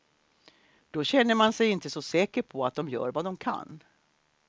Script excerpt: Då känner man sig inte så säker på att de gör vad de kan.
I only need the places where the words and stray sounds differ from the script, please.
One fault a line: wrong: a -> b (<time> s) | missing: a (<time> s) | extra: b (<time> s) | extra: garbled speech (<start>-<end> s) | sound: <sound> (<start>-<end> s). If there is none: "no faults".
no faults